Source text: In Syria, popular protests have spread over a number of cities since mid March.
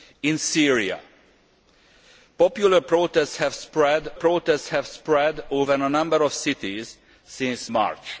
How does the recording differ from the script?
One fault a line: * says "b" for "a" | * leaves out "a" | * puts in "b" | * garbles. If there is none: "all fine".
* puts in "protests have spread"
* leaves out "mid"